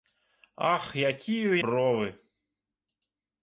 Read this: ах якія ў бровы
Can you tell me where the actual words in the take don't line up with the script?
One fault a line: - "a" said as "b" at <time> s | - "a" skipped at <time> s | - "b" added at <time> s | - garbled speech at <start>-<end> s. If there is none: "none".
none